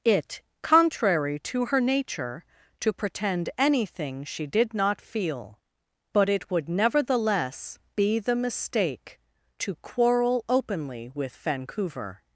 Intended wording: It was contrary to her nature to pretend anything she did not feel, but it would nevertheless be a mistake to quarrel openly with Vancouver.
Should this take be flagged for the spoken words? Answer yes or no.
yes